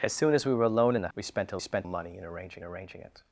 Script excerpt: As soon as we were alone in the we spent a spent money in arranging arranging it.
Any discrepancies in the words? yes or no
no